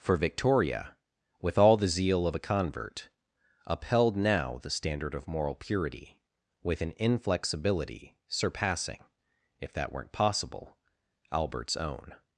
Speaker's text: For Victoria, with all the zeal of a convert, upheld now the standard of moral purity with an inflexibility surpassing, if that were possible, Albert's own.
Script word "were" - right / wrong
wrong